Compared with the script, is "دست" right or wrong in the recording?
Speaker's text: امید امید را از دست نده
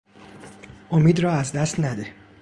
right